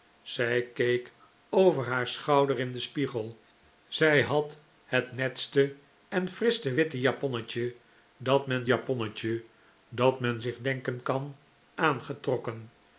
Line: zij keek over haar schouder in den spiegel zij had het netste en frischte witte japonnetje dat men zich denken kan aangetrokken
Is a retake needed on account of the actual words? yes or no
yes